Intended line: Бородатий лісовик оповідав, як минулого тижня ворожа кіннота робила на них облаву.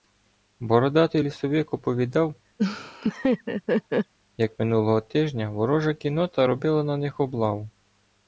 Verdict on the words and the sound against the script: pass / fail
fail